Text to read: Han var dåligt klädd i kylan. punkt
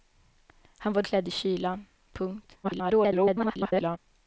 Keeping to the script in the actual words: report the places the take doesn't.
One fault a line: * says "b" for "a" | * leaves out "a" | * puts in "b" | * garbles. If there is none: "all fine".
* leaves out "dåligt"
* garbles